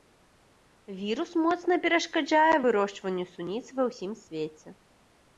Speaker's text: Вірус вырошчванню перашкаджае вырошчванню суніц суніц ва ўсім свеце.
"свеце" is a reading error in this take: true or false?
false